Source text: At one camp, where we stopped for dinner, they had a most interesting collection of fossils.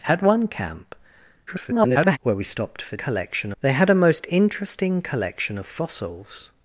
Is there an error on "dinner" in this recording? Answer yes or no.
yes